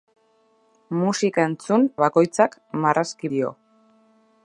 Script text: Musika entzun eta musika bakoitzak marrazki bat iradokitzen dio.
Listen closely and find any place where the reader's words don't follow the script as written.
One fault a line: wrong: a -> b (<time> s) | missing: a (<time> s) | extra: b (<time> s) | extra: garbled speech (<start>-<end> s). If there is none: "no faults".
missing: eta musika (1.9 s)
missing: bat iradokitzen (3.3 s)